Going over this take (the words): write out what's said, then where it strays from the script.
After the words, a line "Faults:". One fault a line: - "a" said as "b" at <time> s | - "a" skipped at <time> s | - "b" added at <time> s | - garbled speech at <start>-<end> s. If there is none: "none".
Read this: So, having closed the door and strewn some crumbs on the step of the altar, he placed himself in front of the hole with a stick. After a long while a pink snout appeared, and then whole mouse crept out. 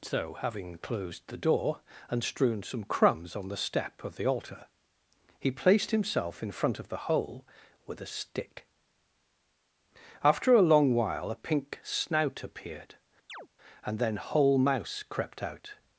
So, having closed the door and strewn some crumbs on the step of the altar, he placed himself in front of the hole with a stick. After a long while a pink snout appeared, and then whole mouse crept out.
Faults:
none